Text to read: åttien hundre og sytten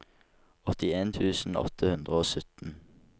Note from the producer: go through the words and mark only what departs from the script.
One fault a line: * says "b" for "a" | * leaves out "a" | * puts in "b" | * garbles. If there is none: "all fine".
* puts in "tusen åtte"